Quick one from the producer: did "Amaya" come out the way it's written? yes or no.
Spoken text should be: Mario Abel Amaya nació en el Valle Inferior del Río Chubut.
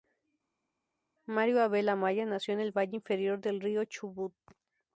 yes